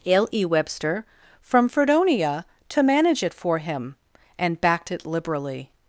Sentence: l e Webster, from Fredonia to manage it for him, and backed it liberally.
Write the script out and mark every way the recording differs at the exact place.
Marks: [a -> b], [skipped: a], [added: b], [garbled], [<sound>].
l e Webster, from Fredonia to manage it for him, and backed it liberally.